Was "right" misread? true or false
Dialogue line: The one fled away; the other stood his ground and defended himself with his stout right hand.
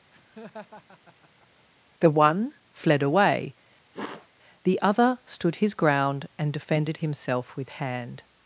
true